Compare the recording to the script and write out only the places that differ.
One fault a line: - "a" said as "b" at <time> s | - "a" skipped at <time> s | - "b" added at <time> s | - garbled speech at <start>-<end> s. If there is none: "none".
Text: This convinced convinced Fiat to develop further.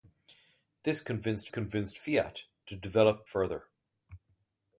none